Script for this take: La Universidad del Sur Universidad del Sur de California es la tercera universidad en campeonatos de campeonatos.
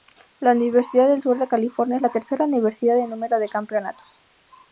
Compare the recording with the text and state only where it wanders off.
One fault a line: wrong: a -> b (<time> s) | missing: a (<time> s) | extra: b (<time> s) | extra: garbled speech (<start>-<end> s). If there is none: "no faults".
missing: Universidad del Sur (1.4 s)
wrong: campeonatos -> número (3.1 s)